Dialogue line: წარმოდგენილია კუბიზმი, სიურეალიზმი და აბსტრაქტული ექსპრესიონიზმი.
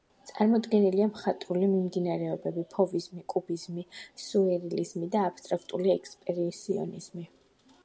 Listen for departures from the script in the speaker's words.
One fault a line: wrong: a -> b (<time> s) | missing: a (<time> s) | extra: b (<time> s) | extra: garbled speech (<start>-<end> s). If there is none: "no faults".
extra: მხატვრული მიმდინარეობები ფოვიზმი (1.1 s)